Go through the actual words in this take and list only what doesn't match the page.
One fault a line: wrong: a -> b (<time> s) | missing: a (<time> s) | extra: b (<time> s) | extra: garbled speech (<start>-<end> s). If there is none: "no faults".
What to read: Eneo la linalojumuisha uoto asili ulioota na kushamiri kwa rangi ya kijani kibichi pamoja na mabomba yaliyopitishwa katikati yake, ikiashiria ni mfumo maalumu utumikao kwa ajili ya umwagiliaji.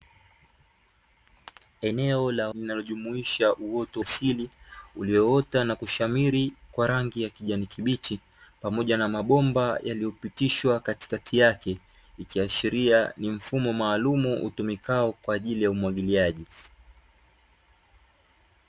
no faults